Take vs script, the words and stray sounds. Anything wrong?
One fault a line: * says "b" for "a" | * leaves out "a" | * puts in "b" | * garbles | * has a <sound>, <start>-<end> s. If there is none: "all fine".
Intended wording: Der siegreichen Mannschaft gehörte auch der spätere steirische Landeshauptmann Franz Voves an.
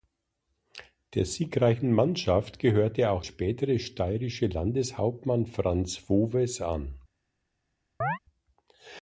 * leaves out "der"
* has a chirp, 8.0-8.2 s